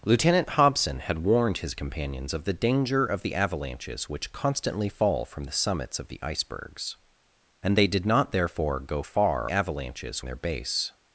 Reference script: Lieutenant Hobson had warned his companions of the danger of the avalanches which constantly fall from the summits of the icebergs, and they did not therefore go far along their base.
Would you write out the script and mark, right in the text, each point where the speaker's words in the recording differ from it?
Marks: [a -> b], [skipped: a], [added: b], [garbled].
Lieutenant Hobson had warned his companions of the danger of the avalanches which constantly fall from the summits of the icebergs, and they did not therefore go far [along -> avalanches] their base.